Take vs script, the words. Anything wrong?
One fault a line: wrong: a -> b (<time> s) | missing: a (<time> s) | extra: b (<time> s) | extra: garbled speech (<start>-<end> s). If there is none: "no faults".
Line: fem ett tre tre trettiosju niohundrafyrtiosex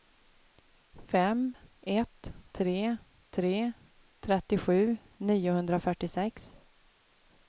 no faults